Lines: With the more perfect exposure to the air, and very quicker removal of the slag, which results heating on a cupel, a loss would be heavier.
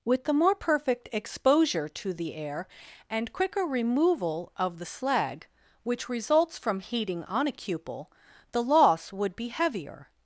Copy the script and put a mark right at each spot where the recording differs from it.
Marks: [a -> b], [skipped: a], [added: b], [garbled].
With the more perfect exposure to the air, and [skipped: very] quicker removal of the slag, which results [added: from] heating on a cupel, [a -> the] loss would be heavier.